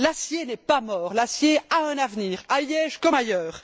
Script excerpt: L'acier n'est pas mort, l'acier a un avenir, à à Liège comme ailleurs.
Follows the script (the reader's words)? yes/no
no